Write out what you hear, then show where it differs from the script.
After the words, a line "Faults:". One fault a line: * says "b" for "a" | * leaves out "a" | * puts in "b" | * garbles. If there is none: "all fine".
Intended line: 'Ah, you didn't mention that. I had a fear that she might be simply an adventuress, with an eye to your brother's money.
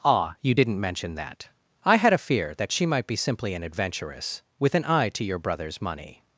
'Ah, you didn't mention that. I had a fear that she might be simply an adventuress, with an eye to your brother's money.
Faults:
all fine